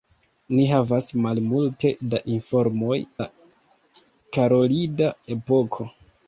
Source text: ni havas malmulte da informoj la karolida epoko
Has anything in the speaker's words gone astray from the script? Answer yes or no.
no